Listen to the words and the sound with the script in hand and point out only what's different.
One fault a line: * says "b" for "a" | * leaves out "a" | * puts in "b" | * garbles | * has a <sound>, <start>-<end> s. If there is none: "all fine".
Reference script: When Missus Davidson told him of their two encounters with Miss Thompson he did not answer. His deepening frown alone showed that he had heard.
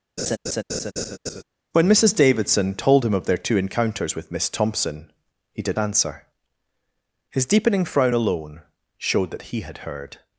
* has a laugh, 0.2-1.4 s
* leaves out "not"